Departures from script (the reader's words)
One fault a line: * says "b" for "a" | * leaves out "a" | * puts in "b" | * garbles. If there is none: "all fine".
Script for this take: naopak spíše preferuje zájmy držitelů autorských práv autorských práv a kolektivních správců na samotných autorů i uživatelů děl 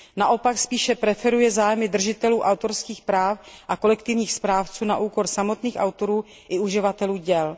* leaves out "autorských práv"
* puts in "úkor"